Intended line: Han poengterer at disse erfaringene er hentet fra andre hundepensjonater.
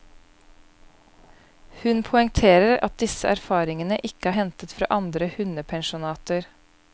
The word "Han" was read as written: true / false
false